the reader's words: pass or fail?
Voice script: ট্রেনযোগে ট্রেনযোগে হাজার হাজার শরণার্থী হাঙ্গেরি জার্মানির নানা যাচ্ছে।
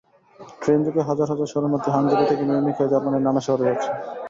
fail